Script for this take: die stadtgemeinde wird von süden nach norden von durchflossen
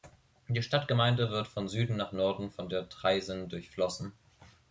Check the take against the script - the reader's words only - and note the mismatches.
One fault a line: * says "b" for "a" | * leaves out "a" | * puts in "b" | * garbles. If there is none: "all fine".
* puts in "der traisen"